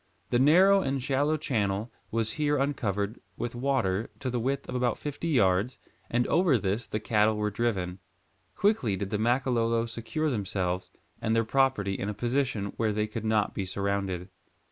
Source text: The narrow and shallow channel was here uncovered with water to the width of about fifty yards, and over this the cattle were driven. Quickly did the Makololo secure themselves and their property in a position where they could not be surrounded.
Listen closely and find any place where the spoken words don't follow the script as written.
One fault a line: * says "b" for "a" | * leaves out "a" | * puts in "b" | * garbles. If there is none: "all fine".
all fine